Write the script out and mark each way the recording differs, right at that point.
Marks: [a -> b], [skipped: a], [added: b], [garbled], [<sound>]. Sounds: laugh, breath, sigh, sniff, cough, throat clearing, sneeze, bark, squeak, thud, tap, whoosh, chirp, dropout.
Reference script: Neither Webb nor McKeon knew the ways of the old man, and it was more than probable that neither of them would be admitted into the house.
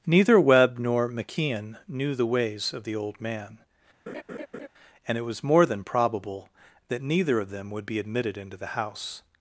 Neither Webb nor McKeon knew the ways of the old man, [laugh] and it was more than probable that neither of them would be admitted into the house.